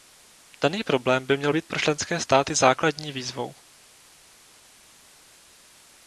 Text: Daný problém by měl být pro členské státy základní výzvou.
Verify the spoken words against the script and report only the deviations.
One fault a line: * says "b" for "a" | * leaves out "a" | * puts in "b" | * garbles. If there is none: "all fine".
all fine